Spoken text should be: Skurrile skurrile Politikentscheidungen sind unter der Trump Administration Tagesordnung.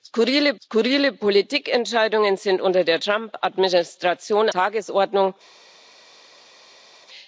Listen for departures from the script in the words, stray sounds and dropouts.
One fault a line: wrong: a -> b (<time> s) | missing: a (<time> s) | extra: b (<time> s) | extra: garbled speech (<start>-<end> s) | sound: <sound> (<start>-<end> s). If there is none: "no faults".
no faults